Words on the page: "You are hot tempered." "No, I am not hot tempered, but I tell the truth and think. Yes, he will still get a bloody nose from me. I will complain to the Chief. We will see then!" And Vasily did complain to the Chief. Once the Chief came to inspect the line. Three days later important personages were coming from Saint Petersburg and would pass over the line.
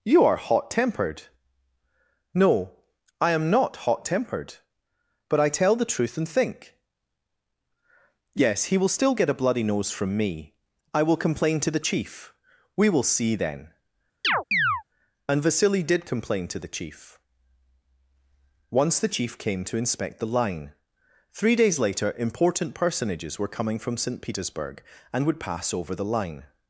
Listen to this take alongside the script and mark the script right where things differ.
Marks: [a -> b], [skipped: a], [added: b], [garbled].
"You are hot tempered." "No, I am not hot tempered, but I tell the truth and think. Yes, he will still get a bloody nose from me. I will complain to the Chief. We will see then!" And Vasily did complain to the Chief. Once the Chief came to inspect the line. Three days later important personages were coming from Saint Petersburg and would pass over the line.